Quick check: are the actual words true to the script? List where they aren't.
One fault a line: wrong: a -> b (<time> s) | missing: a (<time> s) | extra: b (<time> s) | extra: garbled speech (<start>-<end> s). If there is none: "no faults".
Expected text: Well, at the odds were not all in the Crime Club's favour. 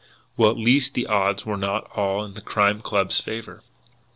extra: least (0.6 s)